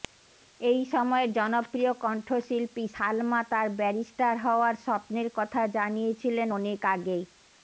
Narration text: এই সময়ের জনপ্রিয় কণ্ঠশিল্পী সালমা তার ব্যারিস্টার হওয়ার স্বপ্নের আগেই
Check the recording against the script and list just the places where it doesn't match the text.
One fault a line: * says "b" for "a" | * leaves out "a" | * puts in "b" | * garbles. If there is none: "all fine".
* puts in "কথা জানিয়েছিলেন অনেক"